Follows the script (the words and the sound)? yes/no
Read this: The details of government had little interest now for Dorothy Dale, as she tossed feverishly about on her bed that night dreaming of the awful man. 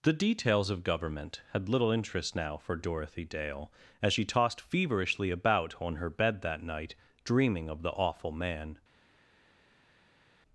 yes